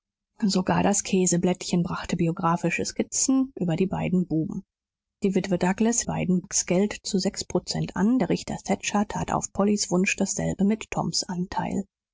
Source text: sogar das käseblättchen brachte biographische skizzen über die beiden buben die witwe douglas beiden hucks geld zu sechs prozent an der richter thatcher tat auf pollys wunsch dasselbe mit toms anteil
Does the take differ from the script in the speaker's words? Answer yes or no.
no